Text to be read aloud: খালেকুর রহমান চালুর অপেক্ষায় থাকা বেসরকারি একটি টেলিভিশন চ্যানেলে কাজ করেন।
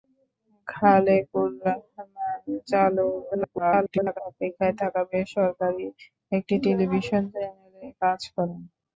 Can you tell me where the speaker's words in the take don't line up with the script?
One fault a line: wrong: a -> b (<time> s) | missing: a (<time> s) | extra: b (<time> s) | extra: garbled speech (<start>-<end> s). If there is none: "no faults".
extra: garbled speech (3.3-4.2 s)